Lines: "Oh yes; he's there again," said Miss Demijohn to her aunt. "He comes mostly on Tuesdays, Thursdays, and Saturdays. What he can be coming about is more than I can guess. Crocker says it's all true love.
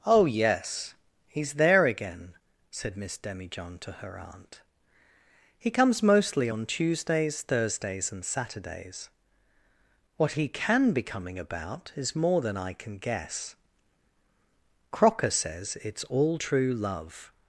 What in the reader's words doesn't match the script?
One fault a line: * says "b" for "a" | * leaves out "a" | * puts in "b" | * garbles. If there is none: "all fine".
all fine